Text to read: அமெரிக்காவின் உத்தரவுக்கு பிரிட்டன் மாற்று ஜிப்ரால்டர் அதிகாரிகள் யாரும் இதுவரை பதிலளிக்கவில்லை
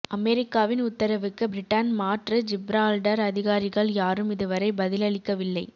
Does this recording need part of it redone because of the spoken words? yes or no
no